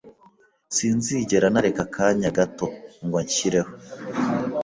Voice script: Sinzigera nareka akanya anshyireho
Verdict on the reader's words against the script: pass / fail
fail